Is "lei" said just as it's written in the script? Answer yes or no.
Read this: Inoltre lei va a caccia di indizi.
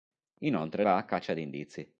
no